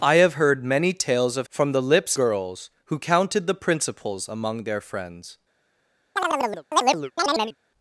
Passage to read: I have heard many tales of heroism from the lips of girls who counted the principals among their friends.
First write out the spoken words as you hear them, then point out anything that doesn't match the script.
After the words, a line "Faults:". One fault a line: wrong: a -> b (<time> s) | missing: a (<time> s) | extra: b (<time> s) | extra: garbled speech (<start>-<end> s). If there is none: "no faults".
I have heard many tales of from the lips girls who counted the principals among their friends.
Faults:
missing: heroism (1.5 s)
missing: of (2.2 s)